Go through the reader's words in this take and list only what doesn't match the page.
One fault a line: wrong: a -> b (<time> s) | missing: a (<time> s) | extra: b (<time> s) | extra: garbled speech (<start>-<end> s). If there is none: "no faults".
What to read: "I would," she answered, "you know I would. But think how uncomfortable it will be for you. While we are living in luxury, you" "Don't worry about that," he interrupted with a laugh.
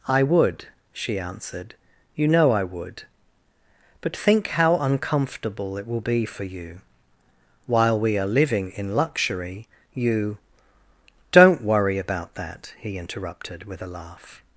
no faults